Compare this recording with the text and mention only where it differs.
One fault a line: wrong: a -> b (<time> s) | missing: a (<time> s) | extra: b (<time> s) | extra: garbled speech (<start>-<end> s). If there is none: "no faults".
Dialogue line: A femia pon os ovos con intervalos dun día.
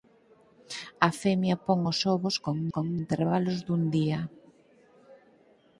extra: con (2.7 s)